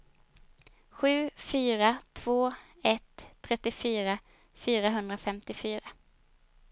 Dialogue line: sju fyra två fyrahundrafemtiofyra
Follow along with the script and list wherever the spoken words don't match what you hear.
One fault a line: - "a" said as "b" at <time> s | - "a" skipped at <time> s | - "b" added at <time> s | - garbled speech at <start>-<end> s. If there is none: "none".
- "ett trettiofyra" added at 2.8 s